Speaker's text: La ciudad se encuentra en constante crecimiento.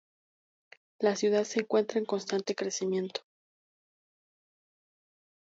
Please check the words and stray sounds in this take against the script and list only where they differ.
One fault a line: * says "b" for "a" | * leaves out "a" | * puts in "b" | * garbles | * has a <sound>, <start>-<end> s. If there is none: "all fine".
all fine